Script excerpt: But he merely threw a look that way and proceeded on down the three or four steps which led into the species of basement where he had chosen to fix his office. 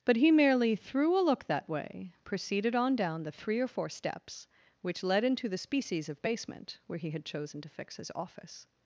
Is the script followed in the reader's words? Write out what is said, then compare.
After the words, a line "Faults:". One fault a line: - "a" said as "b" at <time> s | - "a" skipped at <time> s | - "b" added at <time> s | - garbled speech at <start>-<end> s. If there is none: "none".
But he merely threw a look that way proceeded on down the three or four steps which led into the species of basement where he had chosen to fix his office.
Faults:
- "and" skipped at 2.1 s